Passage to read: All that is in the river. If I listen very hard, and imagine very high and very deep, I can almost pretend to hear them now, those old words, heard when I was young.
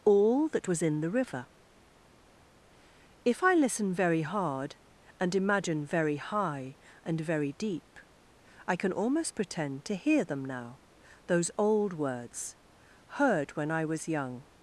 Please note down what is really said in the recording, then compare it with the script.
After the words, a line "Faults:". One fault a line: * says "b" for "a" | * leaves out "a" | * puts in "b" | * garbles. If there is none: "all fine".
All that was in the river. If I listen very hard, and imagine very high and very deep, I can almost pretend to hear them now, those old words, heard when I was young.
Faults:
* says "was" for "is"